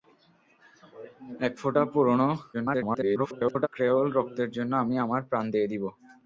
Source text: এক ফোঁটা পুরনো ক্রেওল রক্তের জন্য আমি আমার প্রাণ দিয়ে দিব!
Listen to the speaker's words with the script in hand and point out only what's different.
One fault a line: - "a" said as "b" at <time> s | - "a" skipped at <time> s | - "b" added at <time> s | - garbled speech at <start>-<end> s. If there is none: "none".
- garbled speech at 2.5-3.7 s